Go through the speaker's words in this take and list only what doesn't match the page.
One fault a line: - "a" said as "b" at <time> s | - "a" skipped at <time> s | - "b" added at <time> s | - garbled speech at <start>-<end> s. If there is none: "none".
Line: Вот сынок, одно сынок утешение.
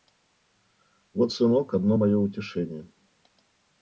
- "сынок" said as "мое" at 2.0 s